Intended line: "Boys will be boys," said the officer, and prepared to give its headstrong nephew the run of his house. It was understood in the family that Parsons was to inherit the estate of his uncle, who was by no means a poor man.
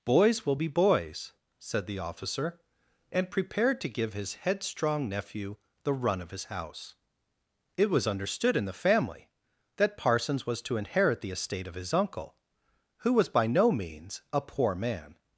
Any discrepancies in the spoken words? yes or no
yes